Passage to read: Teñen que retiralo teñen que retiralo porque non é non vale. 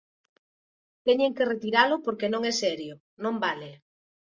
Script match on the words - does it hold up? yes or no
no